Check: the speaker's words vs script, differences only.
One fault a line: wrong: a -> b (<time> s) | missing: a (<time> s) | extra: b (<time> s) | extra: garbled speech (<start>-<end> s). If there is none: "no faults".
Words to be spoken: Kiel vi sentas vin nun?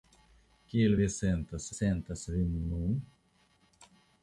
extra: sentas (1.8 s)